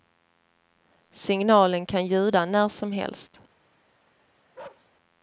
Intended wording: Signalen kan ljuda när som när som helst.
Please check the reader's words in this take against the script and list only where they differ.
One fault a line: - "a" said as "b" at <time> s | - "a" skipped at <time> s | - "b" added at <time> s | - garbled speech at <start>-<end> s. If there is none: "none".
- "när som" skipped at 2.9 s